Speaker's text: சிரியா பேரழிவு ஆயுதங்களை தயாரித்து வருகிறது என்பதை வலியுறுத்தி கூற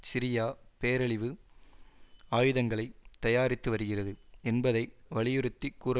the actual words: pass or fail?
pass